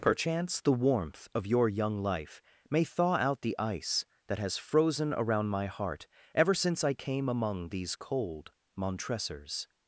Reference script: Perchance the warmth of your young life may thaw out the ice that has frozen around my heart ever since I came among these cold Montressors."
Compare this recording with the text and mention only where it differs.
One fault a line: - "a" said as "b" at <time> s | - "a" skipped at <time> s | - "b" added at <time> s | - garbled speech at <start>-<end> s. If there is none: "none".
none